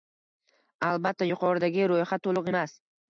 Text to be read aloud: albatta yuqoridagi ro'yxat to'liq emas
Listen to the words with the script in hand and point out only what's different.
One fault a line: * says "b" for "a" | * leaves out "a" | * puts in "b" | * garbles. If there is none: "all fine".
all fine